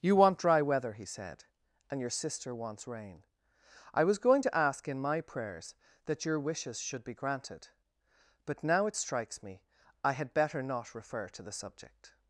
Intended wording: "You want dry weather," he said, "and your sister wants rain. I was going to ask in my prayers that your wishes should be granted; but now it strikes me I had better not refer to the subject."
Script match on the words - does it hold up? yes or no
yes